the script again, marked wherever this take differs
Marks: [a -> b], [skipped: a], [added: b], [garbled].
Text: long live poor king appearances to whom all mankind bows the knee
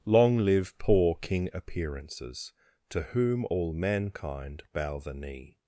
long live poor king appearances to whom all mankind [bows -> bow] the knee